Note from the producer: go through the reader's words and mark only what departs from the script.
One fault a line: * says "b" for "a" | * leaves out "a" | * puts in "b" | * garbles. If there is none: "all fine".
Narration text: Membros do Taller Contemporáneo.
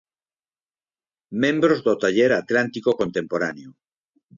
* puts in "Atlántico"